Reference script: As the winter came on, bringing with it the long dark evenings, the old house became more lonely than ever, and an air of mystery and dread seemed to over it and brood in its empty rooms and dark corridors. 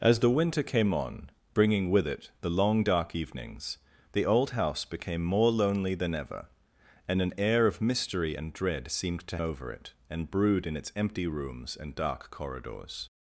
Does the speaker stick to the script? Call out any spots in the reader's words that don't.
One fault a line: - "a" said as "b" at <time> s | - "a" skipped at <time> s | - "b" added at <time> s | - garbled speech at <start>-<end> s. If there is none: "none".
none